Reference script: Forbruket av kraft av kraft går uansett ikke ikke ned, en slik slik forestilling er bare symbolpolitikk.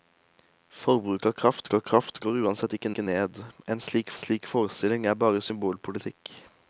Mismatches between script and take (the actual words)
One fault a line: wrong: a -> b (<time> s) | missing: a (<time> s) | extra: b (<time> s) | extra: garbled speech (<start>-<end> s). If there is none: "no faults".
no faults